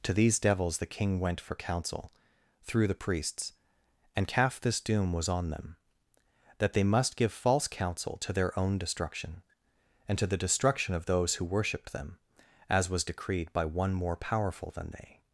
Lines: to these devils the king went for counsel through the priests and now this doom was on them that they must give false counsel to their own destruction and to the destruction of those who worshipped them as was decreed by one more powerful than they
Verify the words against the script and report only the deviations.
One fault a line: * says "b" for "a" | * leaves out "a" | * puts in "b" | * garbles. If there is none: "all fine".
* says "calf" for "now"